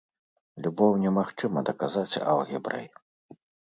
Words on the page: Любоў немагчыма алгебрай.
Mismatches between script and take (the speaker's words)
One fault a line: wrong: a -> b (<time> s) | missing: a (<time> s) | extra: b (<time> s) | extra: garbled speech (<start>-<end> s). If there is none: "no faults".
extra: даказаць (1.7 s)